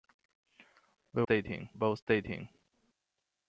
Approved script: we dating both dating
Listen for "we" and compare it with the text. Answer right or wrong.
right